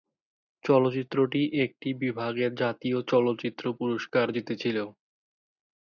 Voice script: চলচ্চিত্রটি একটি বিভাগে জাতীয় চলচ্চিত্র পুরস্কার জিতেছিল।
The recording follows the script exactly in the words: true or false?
true